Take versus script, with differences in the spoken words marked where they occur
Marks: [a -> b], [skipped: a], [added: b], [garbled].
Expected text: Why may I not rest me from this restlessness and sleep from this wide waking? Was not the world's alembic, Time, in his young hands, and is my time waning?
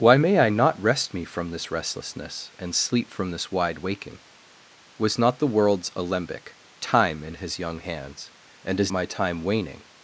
Why may I not rest me from this restlessness and sleep from this wide waking? Was not the world's alembic, Time, in his young hands, and is my time waning?